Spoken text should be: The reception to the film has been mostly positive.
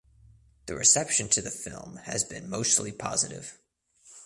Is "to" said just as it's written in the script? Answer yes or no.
yes